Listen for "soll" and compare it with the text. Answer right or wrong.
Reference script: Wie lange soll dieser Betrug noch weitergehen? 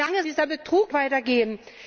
wrong